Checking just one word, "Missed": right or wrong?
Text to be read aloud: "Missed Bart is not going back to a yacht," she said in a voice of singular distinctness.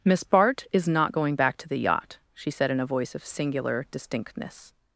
wrong